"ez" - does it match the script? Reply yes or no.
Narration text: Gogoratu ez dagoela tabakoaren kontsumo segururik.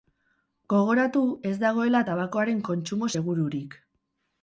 yes